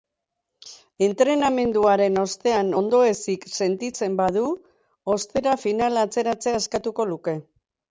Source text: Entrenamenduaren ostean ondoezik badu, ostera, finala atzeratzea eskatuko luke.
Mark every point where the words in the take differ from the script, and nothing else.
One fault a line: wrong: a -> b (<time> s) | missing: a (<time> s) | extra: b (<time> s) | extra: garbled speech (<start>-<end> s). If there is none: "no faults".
extra: sentitzen (3.6 s)